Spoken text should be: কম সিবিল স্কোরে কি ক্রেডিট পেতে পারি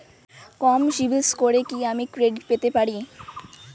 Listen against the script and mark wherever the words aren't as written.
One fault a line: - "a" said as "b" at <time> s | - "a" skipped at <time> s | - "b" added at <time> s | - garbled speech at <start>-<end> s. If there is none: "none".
- "আমি" added at 1.9 s